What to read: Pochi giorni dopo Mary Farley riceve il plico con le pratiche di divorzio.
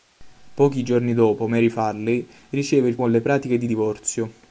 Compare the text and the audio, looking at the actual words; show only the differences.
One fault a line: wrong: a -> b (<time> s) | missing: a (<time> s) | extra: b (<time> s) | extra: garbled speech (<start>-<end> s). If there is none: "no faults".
missing: plico (3.0 s)